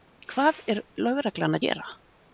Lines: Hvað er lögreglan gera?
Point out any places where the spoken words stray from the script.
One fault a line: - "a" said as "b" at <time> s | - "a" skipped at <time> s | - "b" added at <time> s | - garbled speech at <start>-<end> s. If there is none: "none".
none